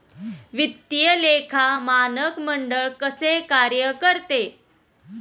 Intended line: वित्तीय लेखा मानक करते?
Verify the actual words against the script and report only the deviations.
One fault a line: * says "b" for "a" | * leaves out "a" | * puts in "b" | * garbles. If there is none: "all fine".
* puts in "मंडळ कसे कार्य"